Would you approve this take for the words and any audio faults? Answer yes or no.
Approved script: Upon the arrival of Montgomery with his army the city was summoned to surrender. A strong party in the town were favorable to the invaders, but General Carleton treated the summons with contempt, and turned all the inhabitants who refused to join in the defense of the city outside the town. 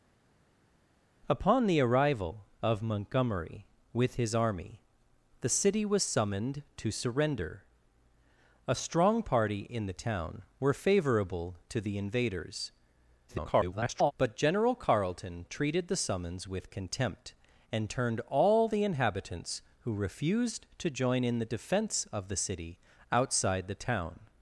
no